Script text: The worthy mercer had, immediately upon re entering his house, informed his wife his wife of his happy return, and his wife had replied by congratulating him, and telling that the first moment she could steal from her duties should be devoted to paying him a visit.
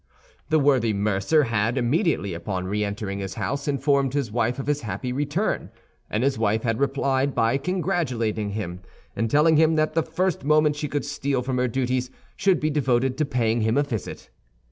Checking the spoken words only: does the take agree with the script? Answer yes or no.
no